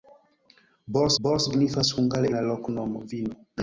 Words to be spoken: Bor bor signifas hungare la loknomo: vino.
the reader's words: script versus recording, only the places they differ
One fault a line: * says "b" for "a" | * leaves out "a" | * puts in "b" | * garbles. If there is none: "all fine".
all fine